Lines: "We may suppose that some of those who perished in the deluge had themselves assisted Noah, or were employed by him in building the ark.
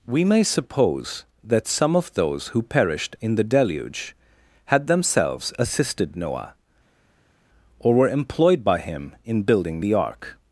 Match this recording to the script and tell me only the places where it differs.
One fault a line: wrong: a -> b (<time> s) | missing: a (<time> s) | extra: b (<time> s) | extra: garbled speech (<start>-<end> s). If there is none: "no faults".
no faults